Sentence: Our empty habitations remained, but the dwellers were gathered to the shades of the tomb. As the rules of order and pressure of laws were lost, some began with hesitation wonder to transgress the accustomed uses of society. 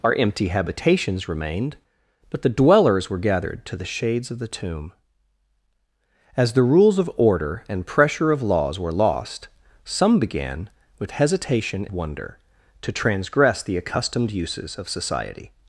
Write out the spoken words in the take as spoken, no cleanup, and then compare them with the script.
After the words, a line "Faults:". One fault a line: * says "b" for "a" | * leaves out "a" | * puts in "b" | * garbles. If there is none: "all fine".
Our empty habitations remained, but the dwellers were gathered to the shades of the tomb. As the rules of order and pressure of laws were lost, some began with hesitation wonder to transgress the accustomed uses of society.
Faults:
all fine